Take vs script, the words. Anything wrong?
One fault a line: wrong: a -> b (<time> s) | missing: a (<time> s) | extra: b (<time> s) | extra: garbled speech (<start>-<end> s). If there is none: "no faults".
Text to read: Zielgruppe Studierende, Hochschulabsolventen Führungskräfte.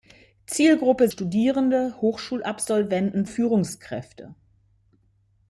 no faults